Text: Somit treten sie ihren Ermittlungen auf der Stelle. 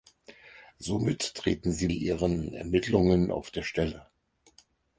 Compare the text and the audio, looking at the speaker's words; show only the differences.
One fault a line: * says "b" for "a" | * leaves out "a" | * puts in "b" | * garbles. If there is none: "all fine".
all fine